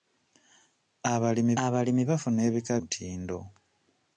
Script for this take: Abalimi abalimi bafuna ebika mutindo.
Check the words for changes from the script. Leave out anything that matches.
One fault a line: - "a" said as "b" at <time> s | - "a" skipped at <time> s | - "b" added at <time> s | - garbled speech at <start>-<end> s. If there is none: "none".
none